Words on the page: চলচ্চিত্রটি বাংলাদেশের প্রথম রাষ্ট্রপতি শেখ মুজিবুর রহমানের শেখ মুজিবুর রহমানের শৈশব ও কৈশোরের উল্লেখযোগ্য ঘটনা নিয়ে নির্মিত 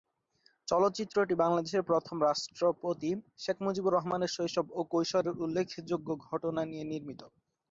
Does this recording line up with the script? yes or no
no